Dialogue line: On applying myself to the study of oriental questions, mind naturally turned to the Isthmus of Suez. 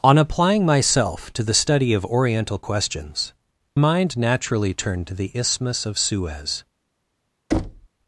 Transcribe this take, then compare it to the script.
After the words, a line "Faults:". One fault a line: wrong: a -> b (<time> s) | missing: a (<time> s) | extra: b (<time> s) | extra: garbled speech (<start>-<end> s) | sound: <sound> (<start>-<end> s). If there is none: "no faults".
On applying myself to the study of oriental questions, mind naturally turned to the Isthmus of Suez.
Faults:
sound: thud (7.5-7.9 s)